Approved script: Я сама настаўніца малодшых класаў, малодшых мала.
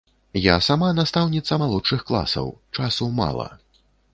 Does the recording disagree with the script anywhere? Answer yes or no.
yes